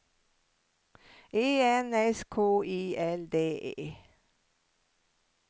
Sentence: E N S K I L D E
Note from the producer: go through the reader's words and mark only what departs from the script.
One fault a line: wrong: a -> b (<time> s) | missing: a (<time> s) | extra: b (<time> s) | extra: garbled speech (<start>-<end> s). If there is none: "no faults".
no faults